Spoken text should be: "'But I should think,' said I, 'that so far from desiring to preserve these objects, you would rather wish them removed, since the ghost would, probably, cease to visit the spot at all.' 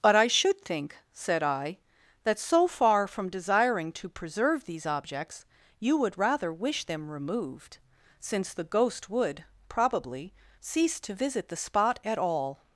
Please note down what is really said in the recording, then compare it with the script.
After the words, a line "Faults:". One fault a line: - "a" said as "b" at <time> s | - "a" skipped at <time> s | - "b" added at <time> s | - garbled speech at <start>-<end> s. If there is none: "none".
"'But I should think,' said I, 'that so far from desiring to preserve these objects, you would rather wish them removed, since the ghost would, probably, cease to visit the spot at all.'
Faults:
none